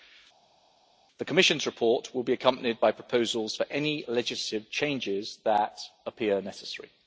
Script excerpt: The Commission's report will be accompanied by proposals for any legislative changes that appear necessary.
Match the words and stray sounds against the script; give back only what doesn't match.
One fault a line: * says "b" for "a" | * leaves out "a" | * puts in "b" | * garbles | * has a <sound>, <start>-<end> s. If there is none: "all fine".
all fine